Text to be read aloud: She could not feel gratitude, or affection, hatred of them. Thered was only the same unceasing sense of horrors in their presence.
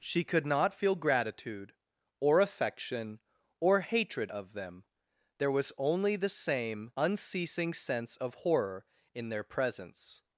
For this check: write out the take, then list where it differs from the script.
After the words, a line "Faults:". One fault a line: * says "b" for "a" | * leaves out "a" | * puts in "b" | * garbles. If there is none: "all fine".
She could not feel gratitude, or affection, or hatred of them. There was only the same unceasing sense of horror in their presence.
Faults:
* puts in "or"
* says "There" for "Thered"
* says "horror" for "horrors"